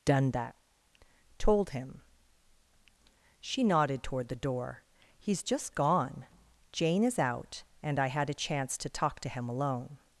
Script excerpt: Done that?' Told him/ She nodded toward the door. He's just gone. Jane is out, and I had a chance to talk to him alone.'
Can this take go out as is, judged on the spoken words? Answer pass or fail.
pass